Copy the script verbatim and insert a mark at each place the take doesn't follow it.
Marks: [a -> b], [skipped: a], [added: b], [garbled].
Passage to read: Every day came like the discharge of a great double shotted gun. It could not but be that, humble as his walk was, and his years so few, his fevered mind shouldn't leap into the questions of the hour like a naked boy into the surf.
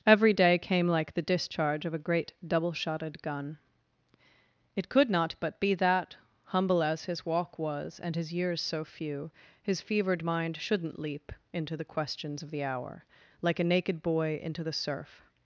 Every day came like the discharge of a great double shotted gun. It could not but be that, humble as his walk was, and his years so few, his fevered mind shouldn't leap into the questions of the hour like a naked boy into the surf.